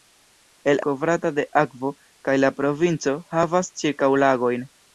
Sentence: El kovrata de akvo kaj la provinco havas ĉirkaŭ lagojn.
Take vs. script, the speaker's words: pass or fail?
pass